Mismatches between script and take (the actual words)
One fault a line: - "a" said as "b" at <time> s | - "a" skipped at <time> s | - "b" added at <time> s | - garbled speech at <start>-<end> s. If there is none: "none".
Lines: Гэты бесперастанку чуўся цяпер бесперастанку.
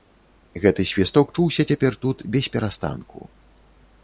- "бесперастанку" said as "свісток" at 0.9 s
- "тут" added at 2.1 s